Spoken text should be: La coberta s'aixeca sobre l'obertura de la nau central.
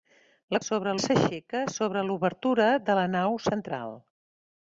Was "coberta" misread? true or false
true